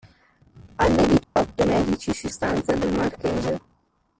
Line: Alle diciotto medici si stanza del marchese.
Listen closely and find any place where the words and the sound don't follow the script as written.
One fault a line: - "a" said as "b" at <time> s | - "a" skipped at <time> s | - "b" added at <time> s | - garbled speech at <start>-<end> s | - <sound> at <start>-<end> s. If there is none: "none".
- dropout at 1.2-1.4 s